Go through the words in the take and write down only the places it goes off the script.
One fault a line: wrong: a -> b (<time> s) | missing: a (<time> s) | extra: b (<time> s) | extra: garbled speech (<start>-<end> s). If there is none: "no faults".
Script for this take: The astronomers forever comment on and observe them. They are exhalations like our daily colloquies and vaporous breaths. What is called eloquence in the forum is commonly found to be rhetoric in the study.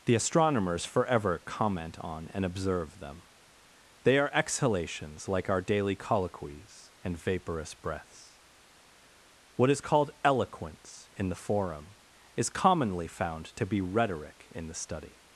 no faults